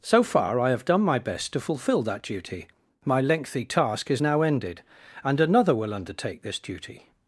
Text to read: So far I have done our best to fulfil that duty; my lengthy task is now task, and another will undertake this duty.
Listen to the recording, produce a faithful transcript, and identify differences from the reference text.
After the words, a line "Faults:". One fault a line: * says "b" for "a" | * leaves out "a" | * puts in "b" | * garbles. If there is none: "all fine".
So far I have done my best to fulfil that duty; my lengthy task is now ended, and another will undertake this duty.
Faults:
* says "my" for "our"
* says "ended" for "task"